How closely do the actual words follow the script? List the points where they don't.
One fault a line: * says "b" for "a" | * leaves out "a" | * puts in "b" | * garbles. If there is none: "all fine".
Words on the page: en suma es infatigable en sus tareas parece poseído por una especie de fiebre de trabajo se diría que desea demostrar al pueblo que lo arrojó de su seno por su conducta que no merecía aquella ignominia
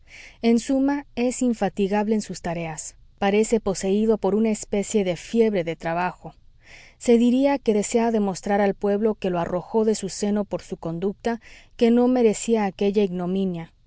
all fine